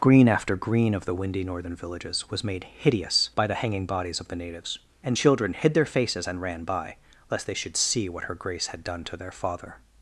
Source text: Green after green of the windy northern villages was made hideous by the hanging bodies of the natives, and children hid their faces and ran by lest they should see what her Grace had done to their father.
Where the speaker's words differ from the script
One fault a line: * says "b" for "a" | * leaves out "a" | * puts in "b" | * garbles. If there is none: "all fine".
all fine